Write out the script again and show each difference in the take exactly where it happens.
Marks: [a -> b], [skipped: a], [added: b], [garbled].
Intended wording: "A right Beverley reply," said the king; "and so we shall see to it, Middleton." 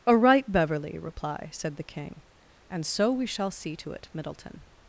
"A right Beverley reply," said the king; "and so we shall see to it, Middleton."